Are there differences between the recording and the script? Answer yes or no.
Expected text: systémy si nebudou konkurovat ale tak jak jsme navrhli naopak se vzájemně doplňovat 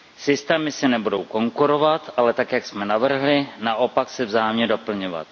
no